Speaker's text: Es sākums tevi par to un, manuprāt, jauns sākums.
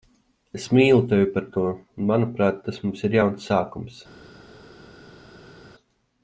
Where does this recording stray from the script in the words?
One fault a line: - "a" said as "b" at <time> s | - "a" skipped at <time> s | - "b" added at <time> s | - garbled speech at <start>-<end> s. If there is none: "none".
- "sākums" said as "mīlu" at 0.8 s
- "tas mums ir" added at 2.7 s